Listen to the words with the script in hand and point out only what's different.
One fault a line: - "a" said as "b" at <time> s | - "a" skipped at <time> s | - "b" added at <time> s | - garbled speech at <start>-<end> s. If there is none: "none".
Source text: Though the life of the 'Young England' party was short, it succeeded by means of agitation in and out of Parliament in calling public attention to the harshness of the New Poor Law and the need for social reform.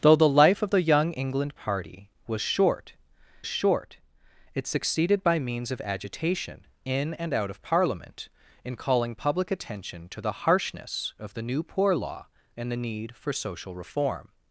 - "short" added at 3.4 s